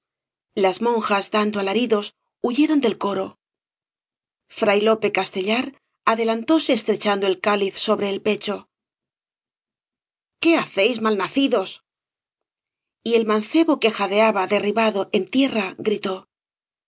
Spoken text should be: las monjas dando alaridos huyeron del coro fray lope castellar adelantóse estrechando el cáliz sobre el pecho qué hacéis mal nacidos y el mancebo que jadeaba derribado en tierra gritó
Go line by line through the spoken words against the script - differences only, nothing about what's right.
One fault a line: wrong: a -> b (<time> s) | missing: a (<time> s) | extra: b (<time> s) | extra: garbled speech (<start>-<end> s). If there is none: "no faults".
no faults